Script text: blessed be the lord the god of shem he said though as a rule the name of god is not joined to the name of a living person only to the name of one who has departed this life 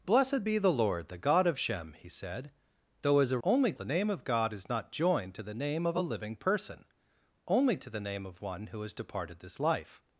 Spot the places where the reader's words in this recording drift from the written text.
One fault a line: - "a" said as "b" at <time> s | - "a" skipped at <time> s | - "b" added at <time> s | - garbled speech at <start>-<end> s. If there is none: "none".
- "rule" said as "only" at 3.4 s